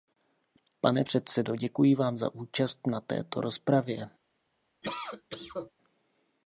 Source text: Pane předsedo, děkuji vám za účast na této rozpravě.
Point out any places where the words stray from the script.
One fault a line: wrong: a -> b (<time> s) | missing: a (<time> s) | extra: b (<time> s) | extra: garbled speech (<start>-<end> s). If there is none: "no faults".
no faults